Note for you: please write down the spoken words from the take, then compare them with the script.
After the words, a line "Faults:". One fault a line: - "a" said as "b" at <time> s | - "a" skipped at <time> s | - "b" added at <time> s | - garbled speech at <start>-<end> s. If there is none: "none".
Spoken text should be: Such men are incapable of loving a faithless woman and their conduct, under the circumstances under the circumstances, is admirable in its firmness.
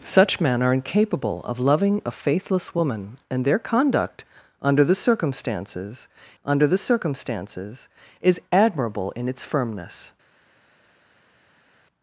Such men are incapable of loving a faithless woman and their conduct, under the circumstances under the circumstances, is admirable in its firmness.
Faults:
none